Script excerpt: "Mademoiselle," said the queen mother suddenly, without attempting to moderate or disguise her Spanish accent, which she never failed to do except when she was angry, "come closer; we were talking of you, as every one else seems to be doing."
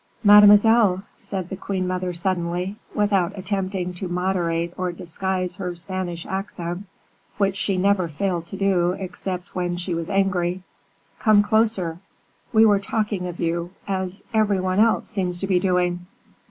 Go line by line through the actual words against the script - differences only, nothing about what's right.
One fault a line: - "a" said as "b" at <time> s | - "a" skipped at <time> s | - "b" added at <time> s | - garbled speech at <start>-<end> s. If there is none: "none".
none